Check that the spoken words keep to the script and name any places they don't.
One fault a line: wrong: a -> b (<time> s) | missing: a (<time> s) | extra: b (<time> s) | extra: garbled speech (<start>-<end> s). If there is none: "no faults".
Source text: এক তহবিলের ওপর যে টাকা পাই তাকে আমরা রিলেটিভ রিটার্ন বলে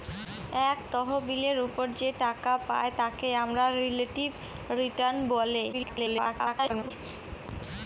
extra: garbled speech (5.7-6.9 s)